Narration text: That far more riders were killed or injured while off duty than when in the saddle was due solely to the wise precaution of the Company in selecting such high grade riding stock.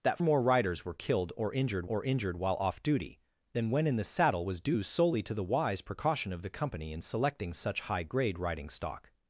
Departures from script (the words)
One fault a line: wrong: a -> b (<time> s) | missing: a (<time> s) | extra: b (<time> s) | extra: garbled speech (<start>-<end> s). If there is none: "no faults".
missing: far (0.2 s)
extra: or injured (1.9 s)